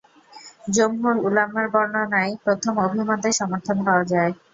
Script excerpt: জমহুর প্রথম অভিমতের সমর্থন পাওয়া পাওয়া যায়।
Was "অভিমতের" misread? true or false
false